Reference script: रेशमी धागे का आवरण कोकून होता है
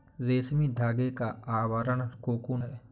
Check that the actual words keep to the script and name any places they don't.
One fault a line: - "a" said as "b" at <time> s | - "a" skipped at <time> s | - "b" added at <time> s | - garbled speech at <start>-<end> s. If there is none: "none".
- "होता" skipped at 2.6 s